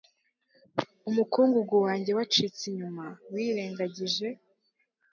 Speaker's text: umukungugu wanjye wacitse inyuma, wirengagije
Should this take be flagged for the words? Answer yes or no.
no